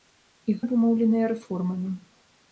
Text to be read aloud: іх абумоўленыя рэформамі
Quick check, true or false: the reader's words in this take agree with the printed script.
true